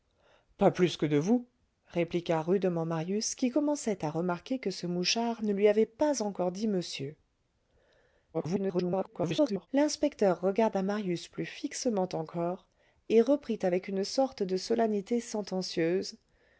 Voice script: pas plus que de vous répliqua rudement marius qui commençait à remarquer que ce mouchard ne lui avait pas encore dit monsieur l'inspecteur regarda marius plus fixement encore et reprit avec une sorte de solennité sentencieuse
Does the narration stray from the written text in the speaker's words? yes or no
yes